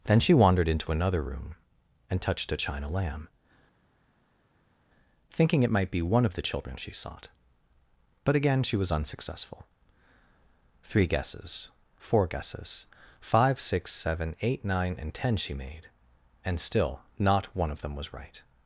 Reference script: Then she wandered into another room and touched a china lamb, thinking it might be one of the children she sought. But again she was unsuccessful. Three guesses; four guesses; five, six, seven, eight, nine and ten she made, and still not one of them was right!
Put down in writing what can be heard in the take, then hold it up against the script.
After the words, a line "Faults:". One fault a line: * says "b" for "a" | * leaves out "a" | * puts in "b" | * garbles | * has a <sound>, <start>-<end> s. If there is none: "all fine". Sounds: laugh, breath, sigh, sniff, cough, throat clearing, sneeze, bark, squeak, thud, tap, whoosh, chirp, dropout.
Then she wandered into another room and touched a china lamb, thinking it might be one of the children she sought. But again she was unsuccessful. Three guesses; four guesses; five, six, seven, eight, nine and ten she made, and still not one of them was right!
Faults:
all fine